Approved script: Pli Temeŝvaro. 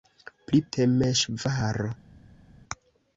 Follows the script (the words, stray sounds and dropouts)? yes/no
yes